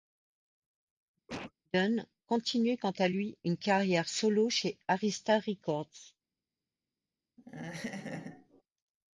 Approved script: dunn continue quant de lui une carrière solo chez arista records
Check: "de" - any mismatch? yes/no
yes